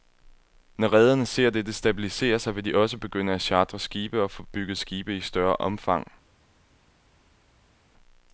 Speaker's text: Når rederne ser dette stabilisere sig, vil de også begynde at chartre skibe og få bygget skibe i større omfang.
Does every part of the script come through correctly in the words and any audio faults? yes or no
yes